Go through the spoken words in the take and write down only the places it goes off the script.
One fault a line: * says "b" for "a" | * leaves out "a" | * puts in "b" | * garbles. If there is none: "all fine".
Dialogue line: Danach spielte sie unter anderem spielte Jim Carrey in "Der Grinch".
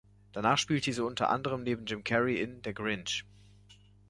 * says "neben" for "spielte"